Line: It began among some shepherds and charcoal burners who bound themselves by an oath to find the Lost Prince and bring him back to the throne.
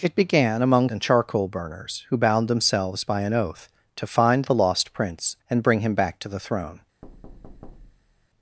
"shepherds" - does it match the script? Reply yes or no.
no